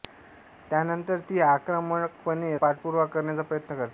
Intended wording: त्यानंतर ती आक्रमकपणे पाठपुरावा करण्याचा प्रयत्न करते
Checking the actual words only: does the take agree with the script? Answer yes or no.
yes